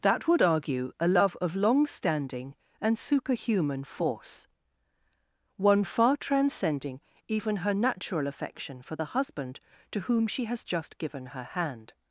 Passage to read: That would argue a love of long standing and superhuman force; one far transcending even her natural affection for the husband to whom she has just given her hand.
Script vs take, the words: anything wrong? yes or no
no